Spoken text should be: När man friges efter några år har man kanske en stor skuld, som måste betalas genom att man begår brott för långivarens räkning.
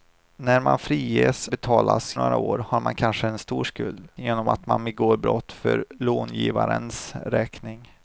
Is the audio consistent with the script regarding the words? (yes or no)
no